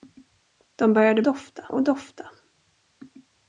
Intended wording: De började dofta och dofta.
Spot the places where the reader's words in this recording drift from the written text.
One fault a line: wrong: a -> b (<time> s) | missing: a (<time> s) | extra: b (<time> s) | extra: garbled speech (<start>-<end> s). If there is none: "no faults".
no faults